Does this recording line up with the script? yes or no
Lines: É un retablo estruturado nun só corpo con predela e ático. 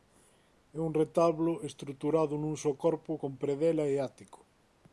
yes